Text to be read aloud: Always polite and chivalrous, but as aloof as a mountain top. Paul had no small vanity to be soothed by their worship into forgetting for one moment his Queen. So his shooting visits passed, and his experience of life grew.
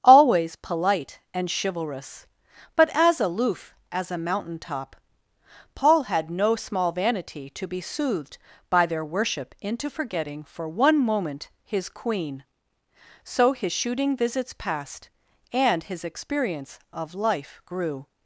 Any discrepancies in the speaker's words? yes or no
no